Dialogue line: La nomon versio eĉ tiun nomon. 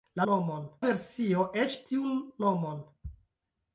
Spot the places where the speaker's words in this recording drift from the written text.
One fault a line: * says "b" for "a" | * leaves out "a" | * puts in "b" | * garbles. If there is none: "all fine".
all fine